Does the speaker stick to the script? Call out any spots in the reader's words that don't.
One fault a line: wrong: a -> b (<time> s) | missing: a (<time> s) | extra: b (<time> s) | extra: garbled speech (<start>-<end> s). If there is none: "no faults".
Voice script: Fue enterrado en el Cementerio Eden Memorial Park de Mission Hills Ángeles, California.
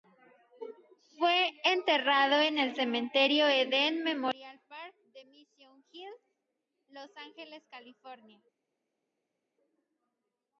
extra: Los (6.9 s)